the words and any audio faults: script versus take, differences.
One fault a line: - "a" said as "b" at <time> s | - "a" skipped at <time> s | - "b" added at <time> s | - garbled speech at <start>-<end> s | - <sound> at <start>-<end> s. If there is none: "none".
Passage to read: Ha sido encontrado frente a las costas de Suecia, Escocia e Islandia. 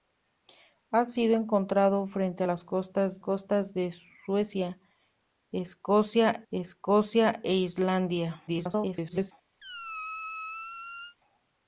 - "costas" added at 3.2 s
- "Escocia" added at 6.5 s
- garbled speech at 8.5-9.3 s
- squeak at 9.6-11.2 s